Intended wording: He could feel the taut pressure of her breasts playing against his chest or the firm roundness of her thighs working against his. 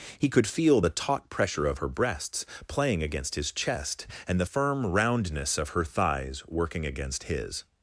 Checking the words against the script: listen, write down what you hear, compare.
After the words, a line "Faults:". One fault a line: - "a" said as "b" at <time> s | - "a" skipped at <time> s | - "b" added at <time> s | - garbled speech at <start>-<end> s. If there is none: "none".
He could feel the taut pressure of her breasts playing against his chest and the firm roundness of her thighs working against his.
Faults:
- "or" said as "and" at 4.3 s